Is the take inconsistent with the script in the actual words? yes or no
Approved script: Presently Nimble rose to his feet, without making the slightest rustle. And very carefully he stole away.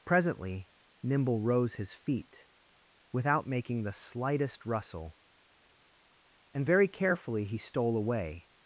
yes